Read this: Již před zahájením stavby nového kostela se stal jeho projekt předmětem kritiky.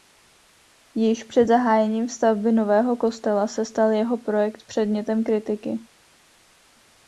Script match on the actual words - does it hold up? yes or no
yes